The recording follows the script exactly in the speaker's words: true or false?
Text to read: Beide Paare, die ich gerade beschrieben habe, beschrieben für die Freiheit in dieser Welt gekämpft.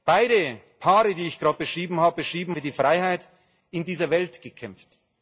true